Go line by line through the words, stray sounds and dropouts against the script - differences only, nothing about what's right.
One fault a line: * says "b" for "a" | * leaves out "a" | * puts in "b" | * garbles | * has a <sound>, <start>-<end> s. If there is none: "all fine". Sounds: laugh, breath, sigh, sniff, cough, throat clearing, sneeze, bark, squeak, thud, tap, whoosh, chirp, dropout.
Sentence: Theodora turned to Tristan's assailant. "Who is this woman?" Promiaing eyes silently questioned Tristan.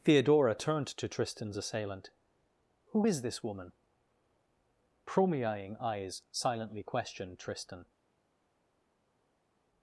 all fine